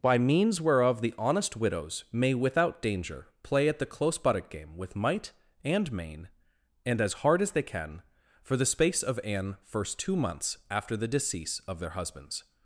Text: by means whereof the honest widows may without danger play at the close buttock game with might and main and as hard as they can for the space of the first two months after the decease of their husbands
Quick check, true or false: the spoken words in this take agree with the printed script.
false